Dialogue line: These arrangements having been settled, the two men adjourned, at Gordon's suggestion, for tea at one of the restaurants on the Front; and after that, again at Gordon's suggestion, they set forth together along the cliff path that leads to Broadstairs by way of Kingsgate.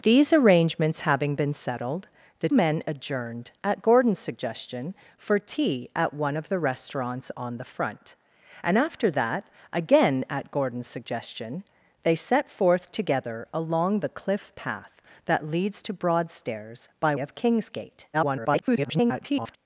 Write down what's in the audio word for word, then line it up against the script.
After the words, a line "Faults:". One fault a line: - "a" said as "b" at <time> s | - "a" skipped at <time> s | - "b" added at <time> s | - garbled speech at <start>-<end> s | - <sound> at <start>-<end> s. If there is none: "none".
These arrangements having been settled, the men adjourned, at Gordon's suggestion, for tea at one of the restaurants on the Front; and after that, again at Gordon's suggestion, they set forth together along the cliff path that leads to Broadstairs by of Kingsgate. [garbled]
Faults:
- "two" skipped at 2.5 s
- "way" skipped at 17.1 s
- garbled speech at 18.1-19.6 s